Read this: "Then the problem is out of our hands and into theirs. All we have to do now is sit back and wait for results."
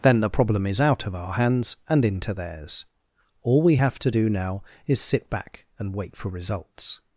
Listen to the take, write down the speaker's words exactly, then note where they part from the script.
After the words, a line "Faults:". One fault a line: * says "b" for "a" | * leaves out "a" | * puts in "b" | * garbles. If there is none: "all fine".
"Then the problem is out of our hands and into theirs. All we have to do now is sit back and wait for results."
Faults:
all fine